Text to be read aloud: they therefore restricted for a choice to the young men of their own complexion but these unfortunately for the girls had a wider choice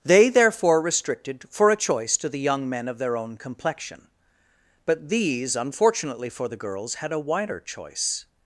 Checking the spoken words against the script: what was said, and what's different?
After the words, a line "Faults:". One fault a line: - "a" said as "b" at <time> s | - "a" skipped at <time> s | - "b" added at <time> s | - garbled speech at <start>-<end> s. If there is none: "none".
they therefore restricted for a choice to the young men of their own complexion but these unfortunately for the girls had a wider choice
Faults:
none